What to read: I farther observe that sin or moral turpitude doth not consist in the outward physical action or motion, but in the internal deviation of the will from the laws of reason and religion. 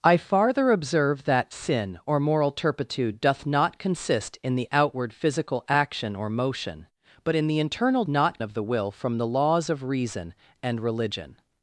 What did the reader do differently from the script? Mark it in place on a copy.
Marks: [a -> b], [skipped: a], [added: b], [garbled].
I farther observe that sin or moral turpitude doth not consist in the outward physical action or motion, but in the internal [deviation -> not] of the will from the laws of reason and religion.